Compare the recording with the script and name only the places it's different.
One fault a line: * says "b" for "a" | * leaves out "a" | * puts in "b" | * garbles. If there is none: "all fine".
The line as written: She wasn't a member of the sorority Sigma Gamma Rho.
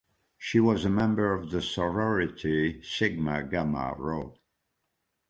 * says "was" for "wasn't"